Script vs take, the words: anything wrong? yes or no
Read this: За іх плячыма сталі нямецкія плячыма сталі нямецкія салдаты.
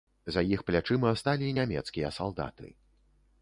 yes